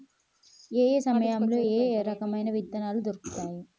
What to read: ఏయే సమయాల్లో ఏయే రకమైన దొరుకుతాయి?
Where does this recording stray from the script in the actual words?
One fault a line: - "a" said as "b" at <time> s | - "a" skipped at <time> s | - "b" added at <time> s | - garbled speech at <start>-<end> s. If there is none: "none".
- "విత్తనాలు" added at 2.5 s